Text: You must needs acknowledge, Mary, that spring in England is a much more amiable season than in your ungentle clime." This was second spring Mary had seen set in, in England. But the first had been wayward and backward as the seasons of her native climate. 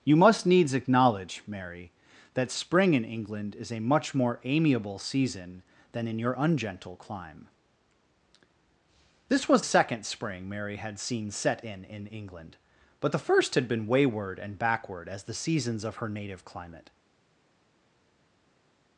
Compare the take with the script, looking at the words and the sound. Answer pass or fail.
pass